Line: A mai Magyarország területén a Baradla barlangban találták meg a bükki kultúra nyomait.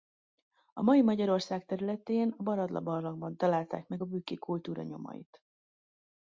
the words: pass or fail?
pass